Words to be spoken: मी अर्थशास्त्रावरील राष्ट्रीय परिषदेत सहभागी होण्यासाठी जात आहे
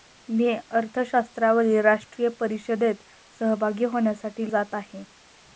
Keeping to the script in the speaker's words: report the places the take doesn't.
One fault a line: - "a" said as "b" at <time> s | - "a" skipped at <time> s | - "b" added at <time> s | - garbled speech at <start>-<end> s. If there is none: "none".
none